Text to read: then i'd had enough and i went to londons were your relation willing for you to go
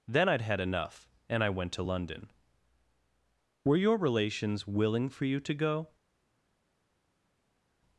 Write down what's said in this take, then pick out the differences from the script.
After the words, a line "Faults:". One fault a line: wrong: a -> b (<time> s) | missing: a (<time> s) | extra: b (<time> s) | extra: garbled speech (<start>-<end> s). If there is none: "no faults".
then i'd had enough and i went to london were your relations willing for you to go
Faults:
wrong: londons -> london (1.8 s)
wrong: relation -> relations (4.0 s)